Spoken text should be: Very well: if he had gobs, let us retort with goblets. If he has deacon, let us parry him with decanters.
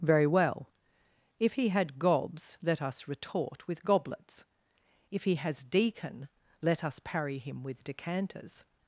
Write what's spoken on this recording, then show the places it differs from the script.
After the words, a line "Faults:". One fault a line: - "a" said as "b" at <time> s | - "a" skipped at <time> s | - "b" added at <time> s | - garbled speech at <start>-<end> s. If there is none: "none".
Very well: if he had gobs, let us retort with goblets. If he has deacon, let us parry him with decanters.
Faults:
none